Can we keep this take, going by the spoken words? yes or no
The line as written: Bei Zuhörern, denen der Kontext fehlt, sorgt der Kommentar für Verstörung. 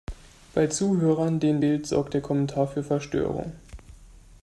no